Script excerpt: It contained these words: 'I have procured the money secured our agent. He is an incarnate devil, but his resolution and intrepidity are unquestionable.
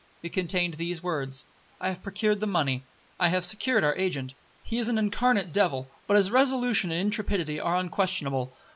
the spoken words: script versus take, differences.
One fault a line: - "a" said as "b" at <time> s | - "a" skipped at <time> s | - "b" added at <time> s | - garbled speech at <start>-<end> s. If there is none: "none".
- "I have" added at 3.2 s